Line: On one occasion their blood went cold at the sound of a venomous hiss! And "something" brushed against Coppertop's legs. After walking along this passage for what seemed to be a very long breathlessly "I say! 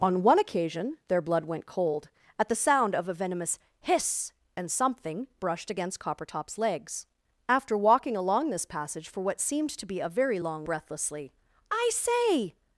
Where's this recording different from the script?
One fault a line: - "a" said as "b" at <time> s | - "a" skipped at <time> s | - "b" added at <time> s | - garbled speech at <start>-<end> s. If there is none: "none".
none